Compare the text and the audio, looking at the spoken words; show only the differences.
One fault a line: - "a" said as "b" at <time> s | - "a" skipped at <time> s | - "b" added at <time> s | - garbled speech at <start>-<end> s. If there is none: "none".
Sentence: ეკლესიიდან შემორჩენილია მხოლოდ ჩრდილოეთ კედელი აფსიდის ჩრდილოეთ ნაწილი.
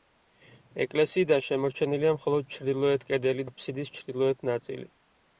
none